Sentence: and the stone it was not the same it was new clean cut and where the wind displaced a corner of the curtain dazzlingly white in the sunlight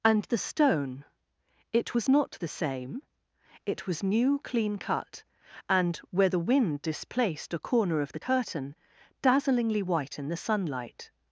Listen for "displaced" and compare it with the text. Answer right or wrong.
right